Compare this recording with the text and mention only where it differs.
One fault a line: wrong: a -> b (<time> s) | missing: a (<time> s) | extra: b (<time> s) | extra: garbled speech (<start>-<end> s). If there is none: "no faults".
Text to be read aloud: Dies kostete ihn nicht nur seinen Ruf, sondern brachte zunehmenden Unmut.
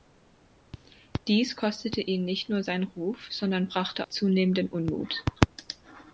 no faults